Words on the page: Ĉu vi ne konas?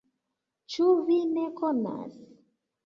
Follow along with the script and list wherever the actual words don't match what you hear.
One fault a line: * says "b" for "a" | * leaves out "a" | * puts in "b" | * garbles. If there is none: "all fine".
all fine